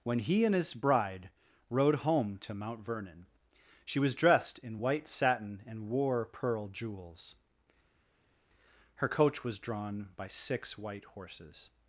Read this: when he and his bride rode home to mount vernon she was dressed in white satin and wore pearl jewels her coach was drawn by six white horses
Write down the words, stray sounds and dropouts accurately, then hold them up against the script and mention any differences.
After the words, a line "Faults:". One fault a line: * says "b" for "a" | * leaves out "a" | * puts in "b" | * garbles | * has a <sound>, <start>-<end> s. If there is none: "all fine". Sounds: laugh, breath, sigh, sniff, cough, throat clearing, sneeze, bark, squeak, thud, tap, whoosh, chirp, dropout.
when he and his bride rode home to mount vernon she was dressed in white satin and wore pearl jewels her coach was drawn by six white horses
Faults:
all fine